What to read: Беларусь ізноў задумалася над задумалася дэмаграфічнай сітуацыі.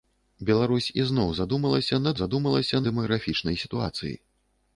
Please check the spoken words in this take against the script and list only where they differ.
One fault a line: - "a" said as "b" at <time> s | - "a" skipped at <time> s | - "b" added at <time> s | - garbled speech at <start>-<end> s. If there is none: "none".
none